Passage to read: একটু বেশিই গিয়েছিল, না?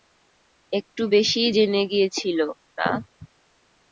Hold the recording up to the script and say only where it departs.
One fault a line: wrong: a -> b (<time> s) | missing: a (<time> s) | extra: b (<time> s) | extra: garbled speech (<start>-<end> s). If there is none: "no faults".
extra: জেনে (1.5 s)